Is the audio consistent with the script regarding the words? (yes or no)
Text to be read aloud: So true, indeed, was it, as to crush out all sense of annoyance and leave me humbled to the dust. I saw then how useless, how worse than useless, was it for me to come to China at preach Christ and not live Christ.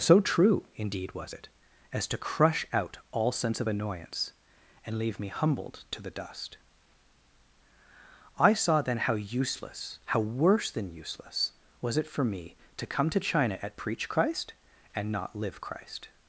yes